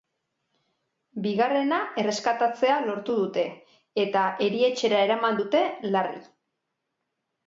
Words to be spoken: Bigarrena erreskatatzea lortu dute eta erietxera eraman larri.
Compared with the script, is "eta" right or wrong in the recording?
right